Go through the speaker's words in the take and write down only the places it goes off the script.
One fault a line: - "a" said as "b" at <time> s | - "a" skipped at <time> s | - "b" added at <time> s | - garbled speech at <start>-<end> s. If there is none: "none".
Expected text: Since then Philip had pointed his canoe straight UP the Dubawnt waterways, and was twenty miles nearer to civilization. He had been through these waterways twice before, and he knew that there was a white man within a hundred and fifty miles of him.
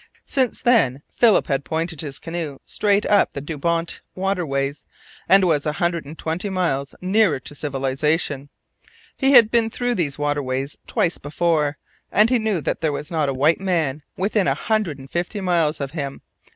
- "a hundred and" added at 5.6 s
- "not" added at 13.1 s